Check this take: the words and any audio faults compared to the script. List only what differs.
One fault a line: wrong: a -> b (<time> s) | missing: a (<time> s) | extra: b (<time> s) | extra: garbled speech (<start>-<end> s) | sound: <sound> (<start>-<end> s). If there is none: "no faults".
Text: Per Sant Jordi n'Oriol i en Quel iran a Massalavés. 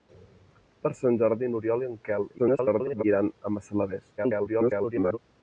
extra: garbled speech (2.4-3.0 s)
extra: garbled speech (4.2-5.2 s)